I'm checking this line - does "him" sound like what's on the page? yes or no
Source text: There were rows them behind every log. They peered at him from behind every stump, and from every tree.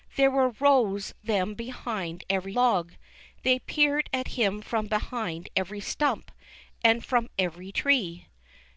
yes